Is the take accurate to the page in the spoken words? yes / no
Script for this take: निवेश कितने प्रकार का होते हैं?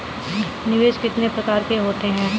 no